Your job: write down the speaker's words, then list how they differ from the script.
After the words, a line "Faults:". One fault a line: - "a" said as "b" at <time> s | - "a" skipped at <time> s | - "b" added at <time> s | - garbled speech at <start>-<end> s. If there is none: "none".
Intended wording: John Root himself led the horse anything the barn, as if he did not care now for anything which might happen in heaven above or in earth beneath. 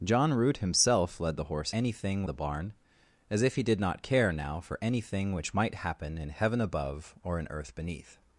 John Root himself led the horse anything the barn, as if he did not care now for anything which might happen in heaven above or in earth beneath.
Faults:
none